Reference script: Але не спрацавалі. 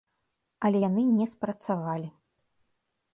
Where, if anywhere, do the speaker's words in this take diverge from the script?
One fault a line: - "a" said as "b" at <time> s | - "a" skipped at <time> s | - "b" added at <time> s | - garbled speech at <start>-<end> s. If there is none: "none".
- "яны" added at 0.9 s